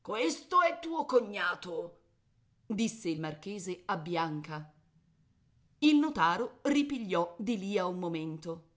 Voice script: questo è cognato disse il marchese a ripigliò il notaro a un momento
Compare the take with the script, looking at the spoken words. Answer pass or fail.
fail